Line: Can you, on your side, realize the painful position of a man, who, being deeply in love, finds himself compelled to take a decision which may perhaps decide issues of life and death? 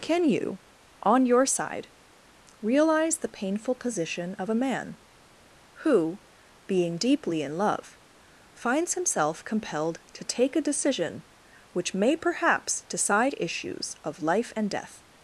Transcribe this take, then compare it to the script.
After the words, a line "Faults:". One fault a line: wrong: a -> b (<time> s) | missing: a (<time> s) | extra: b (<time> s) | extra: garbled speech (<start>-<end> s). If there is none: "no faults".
Can you, on your side, realize the painful position of a man, who, being deeply in love, finds himself compelled to take a decision which may perhaps decide issues of life and death?
Faults:
no faults